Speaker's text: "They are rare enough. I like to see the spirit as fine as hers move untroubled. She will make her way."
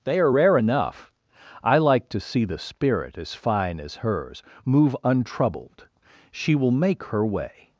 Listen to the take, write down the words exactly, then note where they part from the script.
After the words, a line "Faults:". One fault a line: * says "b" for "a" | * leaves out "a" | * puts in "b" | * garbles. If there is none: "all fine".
"They are rare enough. I like to see the spirit as fine as hers move untroubled. She will make her way."
Faults:
all fine